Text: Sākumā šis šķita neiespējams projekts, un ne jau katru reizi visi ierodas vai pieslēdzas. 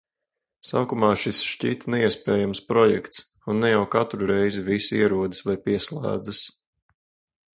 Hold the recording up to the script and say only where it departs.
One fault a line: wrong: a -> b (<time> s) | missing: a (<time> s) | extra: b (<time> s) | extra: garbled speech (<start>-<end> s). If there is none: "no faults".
no faults